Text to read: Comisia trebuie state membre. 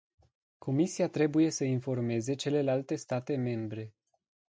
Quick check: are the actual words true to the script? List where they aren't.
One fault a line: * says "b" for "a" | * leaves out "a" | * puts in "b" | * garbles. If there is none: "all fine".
* puts in "să informeze celelalte"